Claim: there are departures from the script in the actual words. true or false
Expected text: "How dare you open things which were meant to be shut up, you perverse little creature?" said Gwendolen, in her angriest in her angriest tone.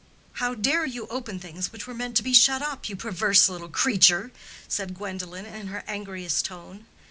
true